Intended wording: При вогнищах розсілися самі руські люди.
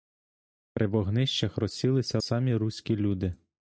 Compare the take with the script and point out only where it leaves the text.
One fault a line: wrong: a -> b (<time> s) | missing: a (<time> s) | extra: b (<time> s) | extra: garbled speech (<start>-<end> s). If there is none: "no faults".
no faults